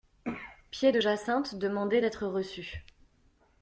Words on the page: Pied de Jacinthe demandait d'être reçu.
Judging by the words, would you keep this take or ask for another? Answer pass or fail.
pass